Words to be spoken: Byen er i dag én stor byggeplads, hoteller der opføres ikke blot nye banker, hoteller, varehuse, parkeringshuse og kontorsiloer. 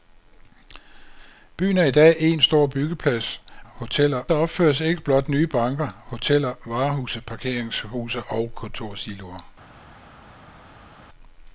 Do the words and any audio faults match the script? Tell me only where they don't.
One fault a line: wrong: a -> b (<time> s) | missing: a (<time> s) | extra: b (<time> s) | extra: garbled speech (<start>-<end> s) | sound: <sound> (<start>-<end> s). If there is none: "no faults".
no faults